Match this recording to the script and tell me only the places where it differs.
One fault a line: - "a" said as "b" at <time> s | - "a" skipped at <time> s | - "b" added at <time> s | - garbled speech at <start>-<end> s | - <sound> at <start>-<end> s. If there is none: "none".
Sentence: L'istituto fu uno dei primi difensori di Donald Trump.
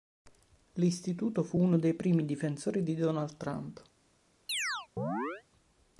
- chirp at 4.5-5.4 s